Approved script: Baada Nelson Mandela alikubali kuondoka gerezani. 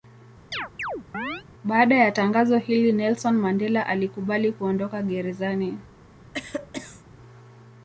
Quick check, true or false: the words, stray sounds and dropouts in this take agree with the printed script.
false